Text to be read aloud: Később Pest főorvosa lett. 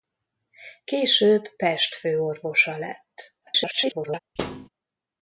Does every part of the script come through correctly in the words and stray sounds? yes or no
no